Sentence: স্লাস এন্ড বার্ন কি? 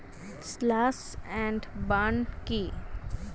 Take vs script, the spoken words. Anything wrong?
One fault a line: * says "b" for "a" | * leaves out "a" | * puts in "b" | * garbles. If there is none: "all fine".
all fine